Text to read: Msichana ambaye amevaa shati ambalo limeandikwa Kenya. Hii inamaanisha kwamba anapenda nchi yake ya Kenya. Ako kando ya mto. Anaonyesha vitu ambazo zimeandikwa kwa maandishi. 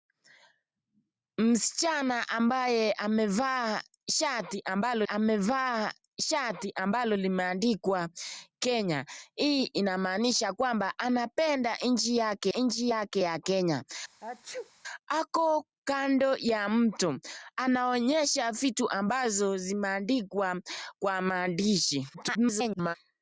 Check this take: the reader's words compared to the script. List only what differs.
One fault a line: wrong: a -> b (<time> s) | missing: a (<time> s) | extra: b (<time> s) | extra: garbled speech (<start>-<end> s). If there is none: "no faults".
extra: amevaa shati ambalo (5.0 s)
extra: nchi yake (12.5 s)
extra: garbled speech (22.1-23.0 s)